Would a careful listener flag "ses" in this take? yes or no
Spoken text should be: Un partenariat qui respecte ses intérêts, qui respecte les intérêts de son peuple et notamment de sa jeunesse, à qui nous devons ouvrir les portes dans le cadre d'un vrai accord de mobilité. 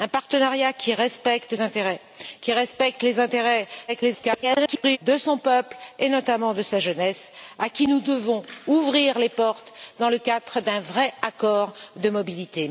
yes